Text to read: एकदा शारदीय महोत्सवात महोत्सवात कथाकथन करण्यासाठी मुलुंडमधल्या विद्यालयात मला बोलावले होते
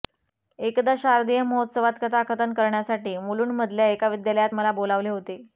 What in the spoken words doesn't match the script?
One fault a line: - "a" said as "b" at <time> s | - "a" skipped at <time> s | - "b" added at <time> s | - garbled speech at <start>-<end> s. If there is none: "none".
- "महोत्सवात" skipped at 2.0 s
- "एका" added at 3.9 s